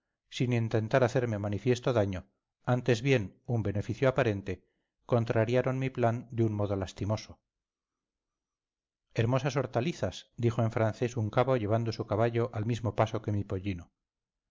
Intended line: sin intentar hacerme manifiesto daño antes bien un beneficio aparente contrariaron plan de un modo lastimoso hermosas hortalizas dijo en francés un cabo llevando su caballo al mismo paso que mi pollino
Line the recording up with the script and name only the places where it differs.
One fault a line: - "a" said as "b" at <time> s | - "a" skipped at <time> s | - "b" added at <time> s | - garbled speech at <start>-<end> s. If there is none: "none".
- "mi" added at 5.8 s